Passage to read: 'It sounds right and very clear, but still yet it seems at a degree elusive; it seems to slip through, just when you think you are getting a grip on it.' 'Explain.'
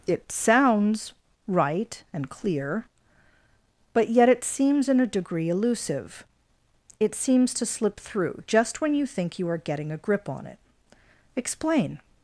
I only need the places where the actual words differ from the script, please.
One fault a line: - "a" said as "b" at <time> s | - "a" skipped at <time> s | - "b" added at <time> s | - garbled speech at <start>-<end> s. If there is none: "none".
- "very" skipped at 2.3 s
- "still" skipped at 4.1 s
- "at" said as "in" at 4.9 s